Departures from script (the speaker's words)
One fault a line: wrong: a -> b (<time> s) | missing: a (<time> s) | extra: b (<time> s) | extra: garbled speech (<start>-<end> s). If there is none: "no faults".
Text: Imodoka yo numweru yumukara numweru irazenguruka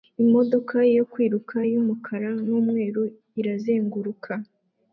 wrong: numweru -> kwiruka (1.1 s)